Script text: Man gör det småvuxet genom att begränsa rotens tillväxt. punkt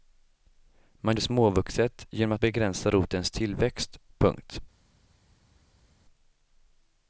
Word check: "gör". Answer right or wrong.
wrong